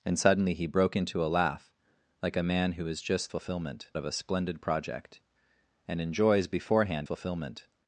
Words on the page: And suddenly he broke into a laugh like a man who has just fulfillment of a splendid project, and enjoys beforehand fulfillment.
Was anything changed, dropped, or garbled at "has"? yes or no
no